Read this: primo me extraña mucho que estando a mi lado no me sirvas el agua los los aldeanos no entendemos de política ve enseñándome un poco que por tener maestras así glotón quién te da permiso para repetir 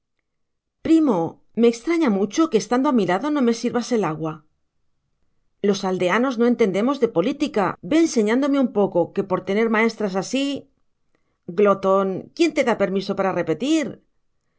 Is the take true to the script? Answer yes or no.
no